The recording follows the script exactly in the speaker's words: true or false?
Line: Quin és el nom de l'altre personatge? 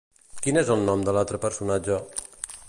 true